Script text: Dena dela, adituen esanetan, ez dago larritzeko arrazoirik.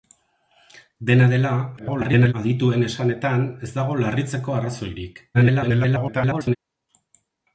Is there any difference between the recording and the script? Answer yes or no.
yes